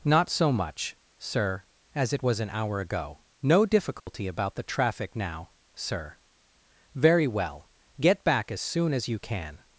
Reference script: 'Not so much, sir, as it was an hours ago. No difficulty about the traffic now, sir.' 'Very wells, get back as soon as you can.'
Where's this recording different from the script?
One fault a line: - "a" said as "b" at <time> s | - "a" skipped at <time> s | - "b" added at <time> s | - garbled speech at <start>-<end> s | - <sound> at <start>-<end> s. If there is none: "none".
- "hours" said as "hour" at 2.5 s
- dropout at 4.0-4.1 s
- "wells" said as "well" at 7.3 s